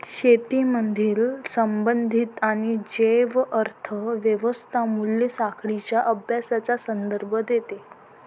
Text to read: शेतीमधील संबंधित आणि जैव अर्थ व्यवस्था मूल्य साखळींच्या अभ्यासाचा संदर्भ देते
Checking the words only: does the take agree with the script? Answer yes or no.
yes